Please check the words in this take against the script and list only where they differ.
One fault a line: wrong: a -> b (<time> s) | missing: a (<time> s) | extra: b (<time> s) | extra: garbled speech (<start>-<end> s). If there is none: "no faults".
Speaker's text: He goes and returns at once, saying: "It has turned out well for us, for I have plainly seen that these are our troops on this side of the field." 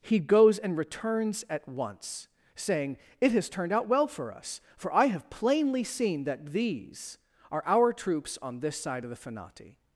wrong: field -> fanati (9.3 s)